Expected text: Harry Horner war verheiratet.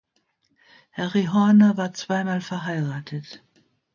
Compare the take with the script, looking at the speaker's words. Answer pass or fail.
fail